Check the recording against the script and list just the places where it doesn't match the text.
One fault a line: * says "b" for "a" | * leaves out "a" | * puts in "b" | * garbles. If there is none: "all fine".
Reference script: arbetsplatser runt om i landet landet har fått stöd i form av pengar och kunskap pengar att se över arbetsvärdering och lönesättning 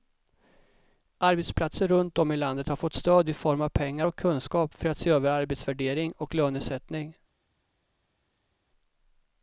* leaves out "landet"
* says "för" for "pengar"